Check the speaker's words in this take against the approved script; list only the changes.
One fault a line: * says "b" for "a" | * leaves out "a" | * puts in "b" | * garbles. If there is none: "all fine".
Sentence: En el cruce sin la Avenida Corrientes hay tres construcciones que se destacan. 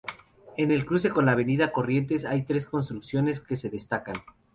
* says "con" for "sin"